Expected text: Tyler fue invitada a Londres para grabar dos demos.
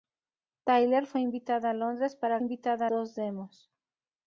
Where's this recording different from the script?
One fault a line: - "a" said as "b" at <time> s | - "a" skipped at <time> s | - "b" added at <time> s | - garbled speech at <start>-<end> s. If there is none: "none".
- "grabar" said as "invitada" at 2.4 s